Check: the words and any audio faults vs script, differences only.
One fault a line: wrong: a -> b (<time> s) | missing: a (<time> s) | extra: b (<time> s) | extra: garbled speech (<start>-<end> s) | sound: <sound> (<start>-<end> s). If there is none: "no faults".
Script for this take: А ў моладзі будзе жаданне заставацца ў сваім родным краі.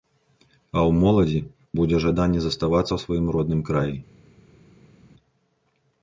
no faults